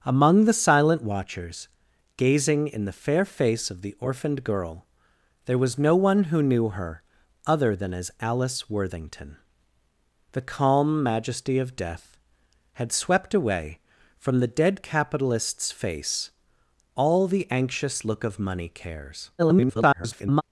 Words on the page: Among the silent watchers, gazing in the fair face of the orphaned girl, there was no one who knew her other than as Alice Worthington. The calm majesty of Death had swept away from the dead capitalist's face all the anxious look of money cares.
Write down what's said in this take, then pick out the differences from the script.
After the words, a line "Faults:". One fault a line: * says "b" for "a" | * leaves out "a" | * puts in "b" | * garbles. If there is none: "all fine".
Among the silent watchers, gazing in the fair face of the orphaned girl, there was no one who knew her other than as Alice Worthington. The calm majesty of Death had swept away from the dead capitalist's face all the anxious look of money cares. [garbled]
Faults:
* garbles